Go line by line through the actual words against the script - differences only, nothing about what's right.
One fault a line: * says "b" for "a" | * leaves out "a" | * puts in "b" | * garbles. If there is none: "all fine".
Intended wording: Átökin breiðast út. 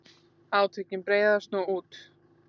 * puts in "nú"